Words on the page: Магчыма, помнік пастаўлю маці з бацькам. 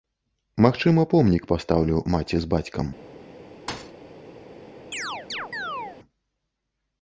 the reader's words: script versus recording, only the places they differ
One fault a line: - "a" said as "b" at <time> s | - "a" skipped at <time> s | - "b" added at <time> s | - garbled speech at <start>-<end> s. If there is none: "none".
none